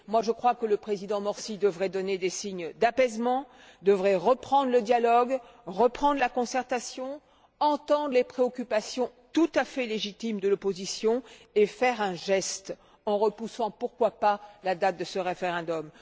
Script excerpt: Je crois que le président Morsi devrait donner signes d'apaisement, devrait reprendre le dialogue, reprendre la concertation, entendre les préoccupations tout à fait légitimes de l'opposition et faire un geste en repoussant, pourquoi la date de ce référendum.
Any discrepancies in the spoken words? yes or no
yes